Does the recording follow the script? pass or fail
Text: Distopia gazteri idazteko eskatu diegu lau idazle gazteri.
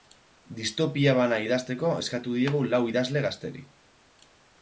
fail